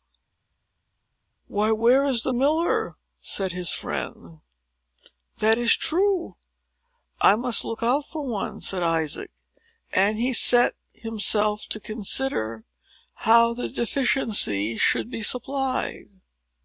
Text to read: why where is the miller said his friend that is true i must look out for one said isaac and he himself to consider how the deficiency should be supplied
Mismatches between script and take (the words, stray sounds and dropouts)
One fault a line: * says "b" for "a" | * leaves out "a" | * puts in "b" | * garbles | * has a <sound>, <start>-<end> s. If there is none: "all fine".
* puts in "set"